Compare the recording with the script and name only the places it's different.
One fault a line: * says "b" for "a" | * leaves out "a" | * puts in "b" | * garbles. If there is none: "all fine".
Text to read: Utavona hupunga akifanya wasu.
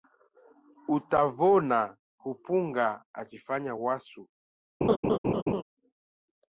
all fine